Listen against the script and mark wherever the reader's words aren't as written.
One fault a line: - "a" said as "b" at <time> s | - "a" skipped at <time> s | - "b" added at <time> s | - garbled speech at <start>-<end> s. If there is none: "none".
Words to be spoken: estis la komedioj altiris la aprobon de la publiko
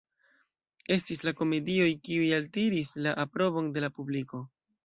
- "kiuj" added at 2.1 s